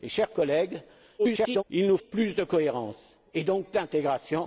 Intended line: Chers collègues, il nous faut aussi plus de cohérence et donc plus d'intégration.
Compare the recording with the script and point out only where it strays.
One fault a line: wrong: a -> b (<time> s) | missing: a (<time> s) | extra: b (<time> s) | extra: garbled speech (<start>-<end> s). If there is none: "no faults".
extra: garbled speech (1.2-1.6 s)
missing: faut aussi (2.0 s)
missing: plus (3.7 s)